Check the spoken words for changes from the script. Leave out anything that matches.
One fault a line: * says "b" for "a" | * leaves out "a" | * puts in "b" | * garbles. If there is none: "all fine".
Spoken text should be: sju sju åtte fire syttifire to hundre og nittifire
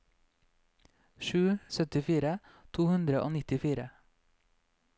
* leaves out "sju åtte fire"